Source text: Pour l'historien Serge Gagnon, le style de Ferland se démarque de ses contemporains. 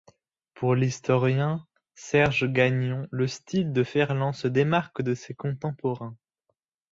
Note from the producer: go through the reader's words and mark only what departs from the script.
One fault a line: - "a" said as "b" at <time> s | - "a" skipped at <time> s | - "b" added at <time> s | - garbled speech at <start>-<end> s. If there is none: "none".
none